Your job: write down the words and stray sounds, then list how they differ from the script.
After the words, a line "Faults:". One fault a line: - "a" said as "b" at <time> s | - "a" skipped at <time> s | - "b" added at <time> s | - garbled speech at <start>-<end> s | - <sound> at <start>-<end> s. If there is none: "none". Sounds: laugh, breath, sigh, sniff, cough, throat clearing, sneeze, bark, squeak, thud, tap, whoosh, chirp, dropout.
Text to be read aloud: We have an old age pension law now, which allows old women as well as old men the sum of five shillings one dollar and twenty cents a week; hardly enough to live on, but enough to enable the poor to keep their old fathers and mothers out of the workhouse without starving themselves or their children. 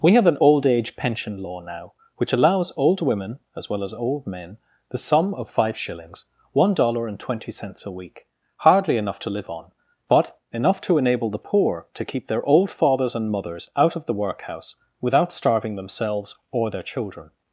We have an old age pension law now, which allows old women as well as old men the sum of five shillings one dollar and twenty cents a week; hardly enough to live on, but enough to enable the poor to keep their old fathers and mothers out of the workhouse without starving themselves or their children.
Faults:
none